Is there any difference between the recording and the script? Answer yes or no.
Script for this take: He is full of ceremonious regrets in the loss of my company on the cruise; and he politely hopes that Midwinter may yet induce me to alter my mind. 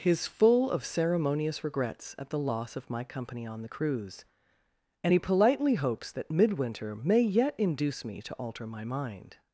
yes